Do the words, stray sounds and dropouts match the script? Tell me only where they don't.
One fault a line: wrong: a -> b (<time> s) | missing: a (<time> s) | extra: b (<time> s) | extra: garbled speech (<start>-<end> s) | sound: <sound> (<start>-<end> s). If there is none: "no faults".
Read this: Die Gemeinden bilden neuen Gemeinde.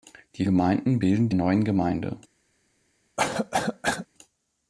sound: cough (3.2-4.1 s)